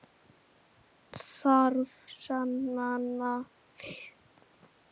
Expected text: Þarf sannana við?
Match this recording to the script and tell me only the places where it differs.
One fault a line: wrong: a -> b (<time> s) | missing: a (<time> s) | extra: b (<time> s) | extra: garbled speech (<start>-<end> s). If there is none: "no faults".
no faults